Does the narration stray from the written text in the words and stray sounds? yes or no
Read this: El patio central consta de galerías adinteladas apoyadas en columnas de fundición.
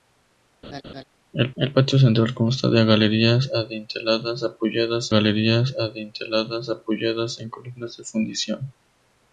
yes